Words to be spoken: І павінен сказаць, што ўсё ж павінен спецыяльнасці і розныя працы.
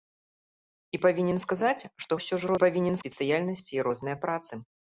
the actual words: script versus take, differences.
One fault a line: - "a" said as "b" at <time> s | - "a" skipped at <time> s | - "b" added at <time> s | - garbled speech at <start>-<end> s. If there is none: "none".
none